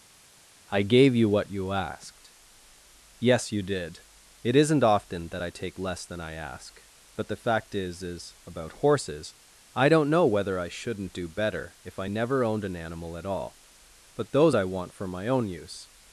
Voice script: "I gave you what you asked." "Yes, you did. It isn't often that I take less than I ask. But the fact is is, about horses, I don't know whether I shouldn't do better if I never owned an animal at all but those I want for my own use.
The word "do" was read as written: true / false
true